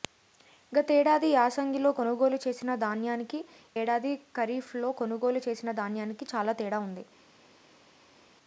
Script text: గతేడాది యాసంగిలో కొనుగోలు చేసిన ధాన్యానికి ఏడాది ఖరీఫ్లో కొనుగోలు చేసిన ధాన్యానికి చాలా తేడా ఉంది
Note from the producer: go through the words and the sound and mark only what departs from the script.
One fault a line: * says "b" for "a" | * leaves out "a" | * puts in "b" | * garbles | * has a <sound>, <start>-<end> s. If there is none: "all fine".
all fine